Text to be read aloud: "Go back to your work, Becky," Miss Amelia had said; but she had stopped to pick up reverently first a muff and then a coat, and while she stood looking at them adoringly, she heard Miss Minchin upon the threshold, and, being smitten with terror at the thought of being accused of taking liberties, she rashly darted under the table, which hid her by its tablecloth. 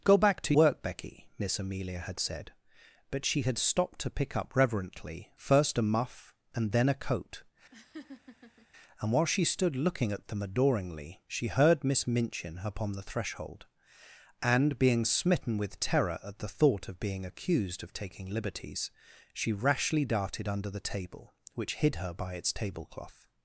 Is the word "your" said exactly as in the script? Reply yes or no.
no